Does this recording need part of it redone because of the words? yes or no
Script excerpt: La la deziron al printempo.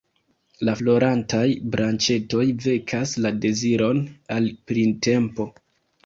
yes